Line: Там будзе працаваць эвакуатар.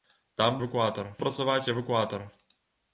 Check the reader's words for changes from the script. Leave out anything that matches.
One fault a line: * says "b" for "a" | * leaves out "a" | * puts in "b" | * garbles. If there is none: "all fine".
* says "эвакуатар" for "будзе"